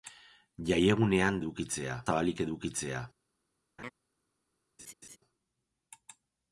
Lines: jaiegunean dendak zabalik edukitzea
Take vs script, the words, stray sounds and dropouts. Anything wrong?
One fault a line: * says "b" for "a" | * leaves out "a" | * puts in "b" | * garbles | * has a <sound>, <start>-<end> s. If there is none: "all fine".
* says "edukitzea" for "dendak"
* has a laugh, 3.8-3.9 s
* has a laugh, 4.8-5.2 s